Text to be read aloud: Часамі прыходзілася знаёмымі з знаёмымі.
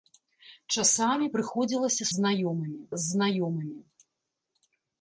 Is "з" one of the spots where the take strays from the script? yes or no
no